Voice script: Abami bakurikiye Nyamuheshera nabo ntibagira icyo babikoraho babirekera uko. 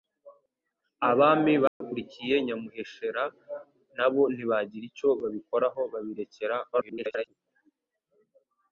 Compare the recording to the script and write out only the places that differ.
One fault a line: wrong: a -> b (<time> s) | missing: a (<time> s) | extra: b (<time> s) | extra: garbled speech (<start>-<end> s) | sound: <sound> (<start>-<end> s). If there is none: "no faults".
sound: dropout (1.7-1.8 s)
extra: garbled speech (6.7-7.3 s)